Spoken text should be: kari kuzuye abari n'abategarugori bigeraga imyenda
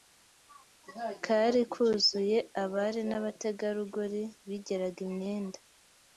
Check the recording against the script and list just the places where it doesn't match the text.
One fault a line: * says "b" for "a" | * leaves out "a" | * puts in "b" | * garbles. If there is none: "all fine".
all fine